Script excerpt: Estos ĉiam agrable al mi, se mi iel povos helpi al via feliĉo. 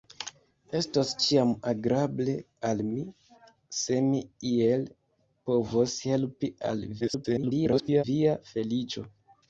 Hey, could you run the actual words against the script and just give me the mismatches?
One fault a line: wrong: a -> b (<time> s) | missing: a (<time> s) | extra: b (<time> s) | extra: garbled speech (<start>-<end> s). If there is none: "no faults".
extra: garbled speech (7.0-8.0 s)